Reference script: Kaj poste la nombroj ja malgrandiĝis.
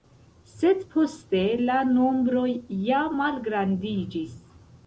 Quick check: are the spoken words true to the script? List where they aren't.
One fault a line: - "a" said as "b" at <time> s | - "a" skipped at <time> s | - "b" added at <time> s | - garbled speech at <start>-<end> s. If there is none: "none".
- "Kaj" said as "Sed" at 0.5 s